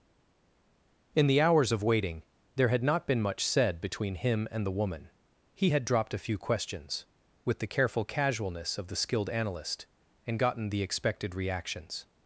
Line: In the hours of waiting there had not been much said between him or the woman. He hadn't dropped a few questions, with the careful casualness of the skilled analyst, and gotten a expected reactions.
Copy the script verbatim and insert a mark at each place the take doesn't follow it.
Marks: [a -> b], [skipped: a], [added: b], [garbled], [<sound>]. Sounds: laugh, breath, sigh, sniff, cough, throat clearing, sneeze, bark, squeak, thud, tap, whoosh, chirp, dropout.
In the hours of waiting there had not been much said between him [or -> and] the woman. He [hadn't -> had] dropped a few questions, with the careful casualness of the skilled analyst, and gotten [a -> the] expected reactions.